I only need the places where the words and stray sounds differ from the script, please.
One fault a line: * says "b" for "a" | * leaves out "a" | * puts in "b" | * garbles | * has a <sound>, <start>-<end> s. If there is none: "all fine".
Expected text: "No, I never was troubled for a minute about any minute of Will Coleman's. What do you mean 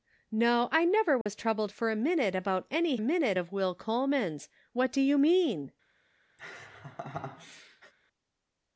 * has a dropout, 1.2-1.3 s
* has a laugh, 6.4-7.9 s